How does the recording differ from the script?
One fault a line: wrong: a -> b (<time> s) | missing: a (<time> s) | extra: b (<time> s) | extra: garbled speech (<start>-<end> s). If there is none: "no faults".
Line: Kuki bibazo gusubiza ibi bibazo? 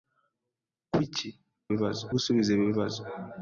no faults